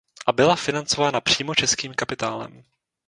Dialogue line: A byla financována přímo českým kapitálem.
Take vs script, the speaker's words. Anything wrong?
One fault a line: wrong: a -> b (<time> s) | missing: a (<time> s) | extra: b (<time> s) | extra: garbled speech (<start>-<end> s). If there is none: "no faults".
no faults